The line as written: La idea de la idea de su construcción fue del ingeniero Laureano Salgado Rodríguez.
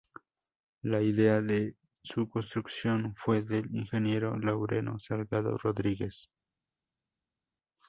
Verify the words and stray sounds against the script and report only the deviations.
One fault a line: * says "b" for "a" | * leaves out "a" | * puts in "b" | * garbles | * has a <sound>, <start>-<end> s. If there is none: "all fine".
* leaves out "la idea de"